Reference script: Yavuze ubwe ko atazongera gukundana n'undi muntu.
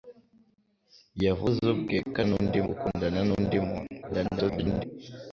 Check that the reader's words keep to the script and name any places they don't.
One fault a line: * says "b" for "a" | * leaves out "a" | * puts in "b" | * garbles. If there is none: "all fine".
* says "n'undi" for "atazongera"
* garbles